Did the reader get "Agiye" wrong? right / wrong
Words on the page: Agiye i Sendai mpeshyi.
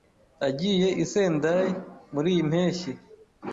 right